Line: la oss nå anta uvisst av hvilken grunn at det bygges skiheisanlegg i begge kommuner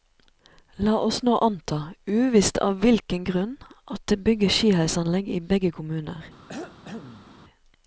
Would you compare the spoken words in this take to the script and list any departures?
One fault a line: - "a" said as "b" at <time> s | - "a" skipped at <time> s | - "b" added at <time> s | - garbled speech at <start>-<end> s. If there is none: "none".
none